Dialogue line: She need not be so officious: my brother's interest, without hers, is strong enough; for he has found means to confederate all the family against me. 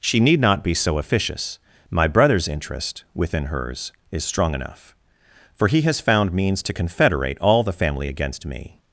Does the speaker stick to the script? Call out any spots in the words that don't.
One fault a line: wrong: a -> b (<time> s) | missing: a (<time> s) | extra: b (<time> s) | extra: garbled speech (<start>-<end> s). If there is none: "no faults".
wrong: without -> within (3.1 s)